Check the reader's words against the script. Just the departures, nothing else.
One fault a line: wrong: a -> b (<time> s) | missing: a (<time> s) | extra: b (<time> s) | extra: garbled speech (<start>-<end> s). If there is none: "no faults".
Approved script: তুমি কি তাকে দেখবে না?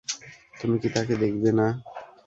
no faults